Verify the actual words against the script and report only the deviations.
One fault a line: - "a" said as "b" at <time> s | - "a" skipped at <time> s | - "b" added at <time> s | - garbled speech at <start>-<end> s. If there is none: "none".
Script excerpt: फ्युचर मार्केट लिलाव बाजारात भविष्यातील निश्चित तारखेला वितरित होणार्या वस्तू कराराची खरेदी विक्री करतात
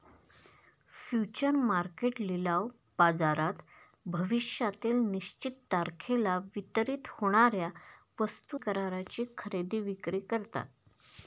none